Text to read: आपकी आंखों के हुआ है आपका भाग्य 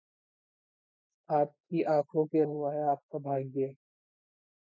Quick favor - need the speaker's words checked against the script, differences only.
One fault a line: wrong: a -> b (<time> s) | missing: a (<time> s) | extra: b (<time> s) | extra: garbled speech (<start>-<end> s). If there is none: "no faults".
no faults